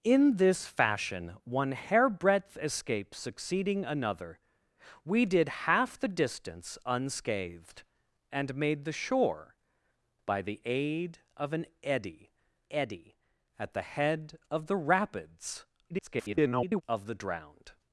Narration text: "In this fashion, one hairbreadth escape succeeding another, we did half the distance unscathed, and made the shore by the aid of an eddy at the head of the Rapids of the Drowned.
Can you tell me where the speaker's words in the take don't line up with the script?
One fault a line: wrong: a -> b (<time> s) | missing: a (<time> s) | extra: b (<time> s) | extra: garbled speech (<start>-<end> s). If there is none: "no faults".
extra: eddy (12.7 s)
extra: garbled speech (15.9-16.8 s)